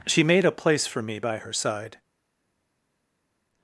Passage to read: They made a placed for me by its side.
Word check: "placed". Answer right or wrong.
wrong